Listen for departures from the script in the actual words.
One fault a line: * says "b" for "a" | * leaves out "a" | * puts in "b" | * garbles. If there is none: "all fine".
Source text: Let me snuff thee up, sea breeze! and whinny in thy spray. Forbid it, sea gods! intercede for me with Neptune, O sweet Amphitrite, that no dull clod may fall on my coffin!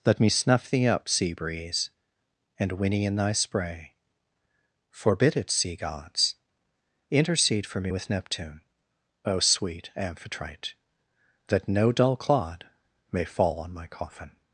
all fine